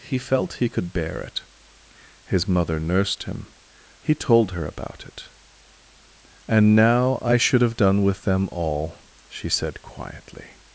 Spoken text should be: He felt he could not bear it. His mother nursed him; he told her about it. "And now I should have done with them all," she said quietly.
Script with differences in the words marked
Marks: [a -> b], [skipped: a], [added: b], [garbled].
He felt he could [skipped: not] bear it. His mother nursed him; he told her about it. "And now I should have done with them all," she said quietly.